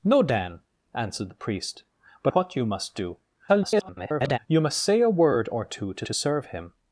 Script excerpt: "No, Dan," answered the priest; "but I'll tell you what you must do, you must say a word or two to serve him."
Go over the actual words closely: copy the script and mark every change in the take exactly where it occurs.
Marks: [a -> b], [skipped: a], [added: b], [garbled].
"No, Dan," answered the priest; "but [skipped: I'll tell you] what you must do, [garbled] you must say a word or two to [added: to] serve him."